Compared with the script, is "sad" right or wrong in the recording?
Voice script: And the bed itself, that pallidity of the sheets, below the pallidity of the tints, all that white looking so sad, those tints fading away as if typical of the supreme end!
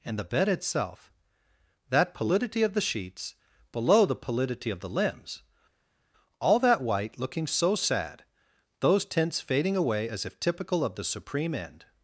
right